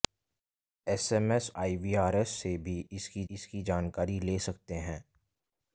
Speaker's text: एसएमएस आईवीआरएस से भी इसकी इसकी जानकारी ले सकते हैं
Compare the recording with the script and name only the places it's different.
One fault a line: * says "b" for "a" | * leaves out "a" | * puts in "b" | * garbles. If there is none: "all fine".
all fine